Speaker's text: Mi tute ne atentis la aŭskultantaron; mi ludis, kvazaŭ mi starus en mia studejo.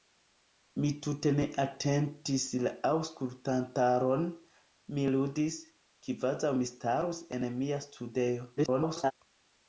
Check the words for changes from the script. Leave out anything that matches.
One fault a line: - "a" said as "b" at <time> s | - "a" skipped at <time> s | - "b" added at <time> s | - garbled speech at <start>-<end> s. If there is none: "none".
- garbled speech at 8.6-9.1 s